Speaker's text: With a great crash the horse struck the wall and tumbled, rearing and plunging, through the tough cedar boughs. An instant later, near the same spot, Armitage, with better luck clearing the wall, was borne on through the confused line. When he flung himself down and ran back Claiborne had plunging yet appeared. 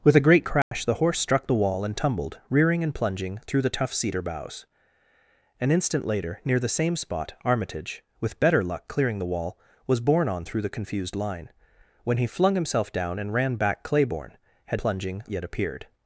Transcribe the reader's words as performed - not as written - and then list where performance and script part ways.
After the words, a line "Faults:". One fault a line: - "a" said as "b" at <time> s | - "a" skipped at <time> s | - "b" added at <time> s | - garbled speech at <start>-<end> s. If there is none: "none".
With a great crash the horse struck the wall and tumbled, rearing and plunging, through the tough cedar boughs. An instant later, near the same spot, Armitage, with better luck clearing the wall, was borne on through the confused line. When he flung himself down and ran back Claiborne had plunging yet appeared.
Faults:
none